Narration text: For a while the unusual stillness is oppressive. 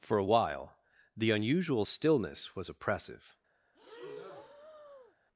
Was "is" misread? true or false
true